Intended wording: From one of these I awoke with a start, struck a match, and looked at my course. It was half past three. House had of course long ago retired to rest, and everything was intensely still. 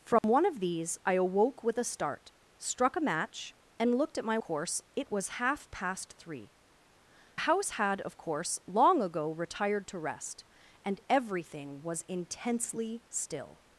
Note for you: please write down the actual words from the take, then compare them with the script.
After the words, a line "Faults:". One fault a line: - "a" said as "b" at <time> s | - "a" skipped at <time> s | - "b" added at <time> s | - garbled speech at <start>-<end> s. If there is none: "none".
From one of these I awoke with a start, struck a match, and looked at my course. It was half past three. House had of course long ago retired to rest, and everything was intensely still.
Faults:
none